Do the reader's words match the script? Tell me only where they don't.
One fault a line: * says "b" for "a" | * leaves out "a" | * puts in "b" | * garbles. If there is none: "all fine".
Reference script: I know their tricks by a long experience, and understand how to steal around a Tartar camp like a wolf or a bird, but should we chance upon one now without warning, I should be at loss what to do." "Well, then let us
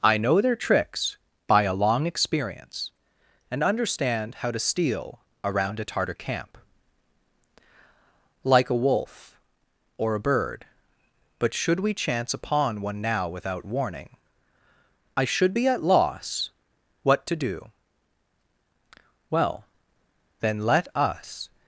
all fine